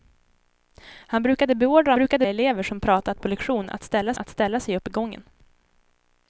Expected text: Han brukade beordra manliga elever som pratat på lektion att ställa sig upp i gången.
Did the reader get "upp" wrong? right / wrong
right